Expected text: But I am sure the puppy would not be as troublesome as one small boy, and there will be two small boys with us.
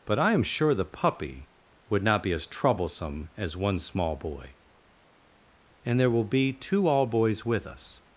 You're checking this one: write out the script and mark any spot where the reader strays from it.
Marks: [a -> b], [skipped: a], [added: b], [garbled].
But I am sure the puppy would not be as troublesome as one small boy, and there will be two [small -> all] boys with us.